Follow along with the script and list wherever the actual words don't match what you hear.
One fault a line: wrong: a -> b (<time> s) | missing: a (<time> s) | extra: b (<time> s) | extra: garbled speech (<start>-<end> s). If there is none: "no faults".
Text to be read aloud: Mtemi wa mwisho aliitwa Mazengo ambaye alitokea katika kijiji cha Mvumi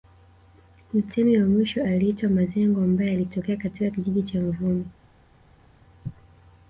no faults